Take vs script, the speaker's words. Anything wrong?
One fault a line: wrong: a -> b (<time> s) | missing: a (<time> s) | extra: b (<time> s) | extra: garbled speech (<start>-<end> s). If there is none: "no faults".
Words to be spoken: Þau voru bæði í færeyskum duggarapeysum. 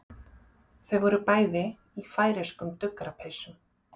no faults